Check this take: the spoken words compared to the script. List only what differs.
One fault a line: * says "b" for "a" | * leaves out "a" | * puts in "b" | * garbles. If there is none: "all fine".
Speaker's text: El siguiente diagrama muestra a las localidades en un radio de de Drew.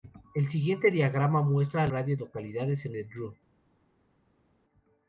* says "radio" for "las"
* leaves out "un radio de"